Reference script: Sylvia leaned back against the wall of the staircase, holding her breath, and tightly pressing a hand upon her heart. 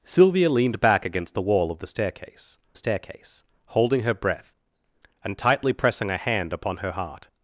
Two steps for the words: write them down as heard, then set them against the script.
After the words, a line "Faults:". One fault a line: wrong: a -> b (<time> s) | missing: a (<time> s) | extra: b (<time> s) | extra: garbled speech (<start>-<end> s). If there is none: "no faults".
Sylvia leaned back against the wall of the staircase staircase, holding her breath, and tightly pressing a hand upon her heart.
Faults:
extra: staircase (2.8 s)